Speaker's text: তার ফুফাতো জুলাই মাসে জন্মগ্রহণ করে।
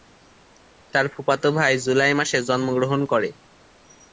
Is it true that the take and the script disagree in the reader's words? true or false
true